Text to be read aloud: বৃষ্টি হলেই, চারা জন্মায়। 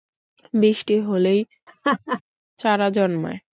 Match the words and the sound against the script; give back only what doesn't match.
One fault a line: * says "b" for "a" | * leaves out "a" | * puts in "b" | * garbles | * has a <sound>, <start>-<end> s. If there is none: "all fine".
* has a laugh, 1.7-2.2 s